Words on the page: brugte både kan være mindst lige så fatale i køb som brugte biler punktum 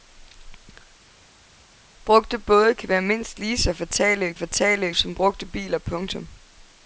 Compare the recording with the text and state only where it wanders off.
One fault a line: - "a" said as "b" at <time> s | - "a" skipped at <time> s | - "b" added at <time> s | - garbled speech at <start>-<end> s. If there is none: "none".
- "køb" said as "fatale" at 4.3 s